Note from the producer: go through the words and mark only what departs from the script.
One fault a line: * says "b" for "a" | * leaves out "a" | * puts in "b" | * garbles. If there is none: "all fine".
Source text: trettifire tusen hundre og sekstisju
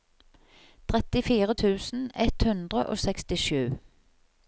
* puts in "ett"